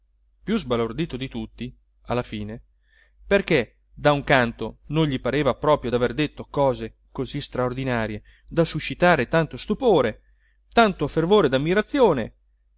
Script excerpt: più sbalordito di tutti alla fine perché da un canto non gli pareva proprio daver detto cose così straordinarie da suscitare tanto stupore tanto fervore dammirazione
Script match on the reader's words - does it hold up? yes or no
yes